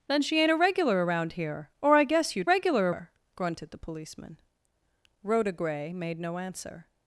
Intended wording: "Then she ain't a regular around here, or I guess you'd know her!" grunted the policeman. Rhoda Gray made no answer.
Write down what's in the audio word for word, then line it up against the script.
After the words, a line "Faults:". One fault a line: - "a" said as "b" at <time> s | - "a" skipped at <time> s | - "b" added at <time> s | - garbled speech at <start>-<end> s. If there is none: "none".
"Then she ain't a regular around here, or I guess you'd regular her!" grunted the policeman. Rhoda Gray made no answer.
Faults:
- "know" said as "regular" at 2.4 s